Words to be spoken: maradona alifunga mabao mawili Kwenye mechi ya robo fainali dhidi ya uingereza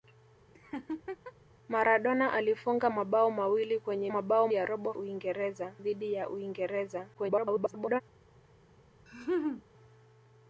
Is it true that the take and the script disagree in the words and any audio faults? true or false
true